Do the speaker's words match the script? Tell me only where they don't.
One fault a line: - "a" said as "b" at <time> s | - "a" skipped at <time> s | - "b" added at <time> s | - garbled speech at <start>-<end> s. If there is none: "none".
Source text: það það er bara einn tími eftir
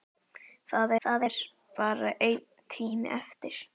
none